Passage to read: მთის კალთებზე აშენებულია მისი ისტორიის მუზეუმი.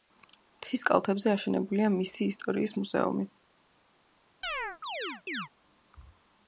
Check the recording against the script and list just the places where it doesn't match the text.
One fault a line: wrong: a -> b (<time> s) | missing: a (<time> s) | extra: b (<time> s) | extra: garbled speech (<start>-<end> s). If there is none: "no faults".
no faults